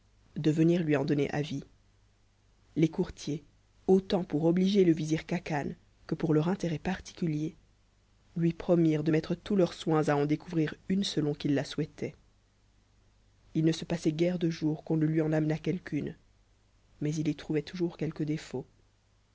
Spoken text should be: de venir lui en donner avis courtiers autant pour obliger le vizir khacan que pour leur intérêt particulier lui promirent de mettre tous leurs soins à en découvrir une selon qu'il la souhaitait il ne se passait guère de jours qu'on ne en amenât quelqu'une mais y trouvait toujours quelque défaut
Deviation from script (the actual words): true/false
true